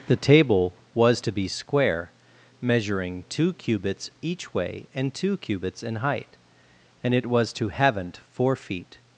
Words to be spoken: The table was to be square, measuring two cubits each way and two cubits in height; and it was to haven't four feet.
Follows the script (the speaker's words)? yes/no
yes